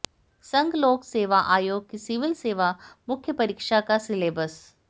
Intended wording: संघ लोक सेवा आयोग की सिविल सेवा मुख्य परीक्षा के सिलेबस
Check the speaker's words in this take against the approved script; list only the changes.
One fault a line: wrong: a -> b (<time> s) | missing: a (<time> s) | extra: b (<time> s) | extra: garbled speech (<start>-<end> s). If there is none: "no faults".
wrong: के -> का (3.8 s)